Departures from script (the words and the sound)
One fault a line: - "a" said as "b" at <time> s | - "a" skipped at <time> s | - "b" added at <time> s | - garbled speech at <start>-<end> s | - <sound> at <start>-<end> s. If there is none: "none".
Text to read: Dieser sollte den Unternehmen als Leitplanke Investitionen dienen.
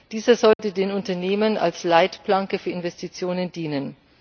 - dropout at 0.5-0.6 s
- "für" added at 2.6 s